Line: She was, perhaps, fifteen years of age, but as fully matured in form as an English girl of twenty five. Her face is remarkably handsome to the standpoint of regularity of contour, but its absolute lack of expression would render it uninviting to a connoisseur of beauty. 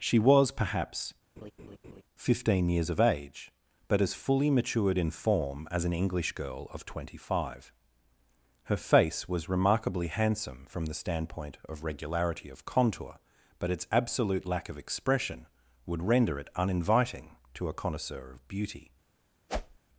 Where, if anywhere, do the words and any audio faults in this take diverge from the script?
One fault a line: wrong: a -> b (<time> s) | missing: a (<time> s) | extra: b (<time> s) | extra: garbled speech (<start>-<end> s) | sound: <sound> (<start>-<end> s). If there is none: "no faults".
sound: laugh (1.4-2.0 s)
wrong: is -> was (9.3 s)
wrong: to -> from (10.7 s)
sound: whoosh (19.5-19.8 s)